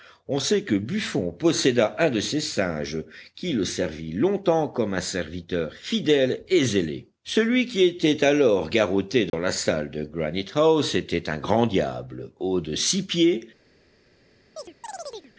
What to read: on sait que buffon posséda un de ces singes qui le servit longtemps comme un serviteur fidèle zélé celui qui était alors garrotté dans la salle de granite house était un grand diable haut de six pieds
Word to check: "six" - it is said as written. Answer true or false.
true